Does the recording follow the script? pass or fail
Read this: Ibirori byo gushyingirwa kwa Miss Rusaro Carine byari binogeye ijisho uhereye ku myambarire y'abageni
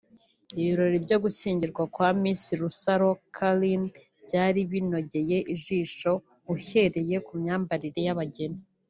pass